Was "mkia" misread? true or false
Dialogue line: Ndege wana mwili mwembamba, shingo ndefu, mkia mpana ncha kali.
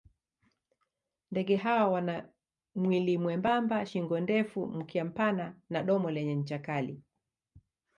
false